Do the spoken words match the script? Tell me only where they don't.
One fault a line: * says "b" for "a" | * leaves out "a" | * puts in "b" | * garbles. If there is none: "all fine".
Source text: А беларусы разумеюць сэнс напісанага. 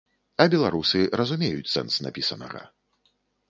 all fine